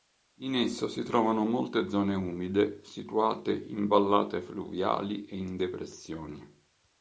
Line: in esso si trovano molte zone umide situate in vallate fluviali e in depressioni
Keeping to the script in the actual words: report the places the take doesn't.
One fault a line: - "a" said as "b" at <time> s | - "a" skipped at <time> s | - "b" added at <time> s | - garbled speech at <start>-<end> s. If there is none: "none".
none